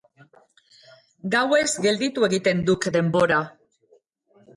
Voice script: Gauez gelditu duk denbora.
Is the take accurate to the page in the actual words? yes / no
no